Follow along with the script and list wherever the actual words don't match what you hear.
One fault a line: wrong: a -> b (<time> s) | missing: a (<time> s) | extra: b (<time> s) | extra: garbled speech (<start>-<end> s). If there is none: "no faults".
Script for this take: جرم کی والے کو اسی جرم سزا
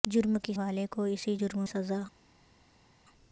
no faults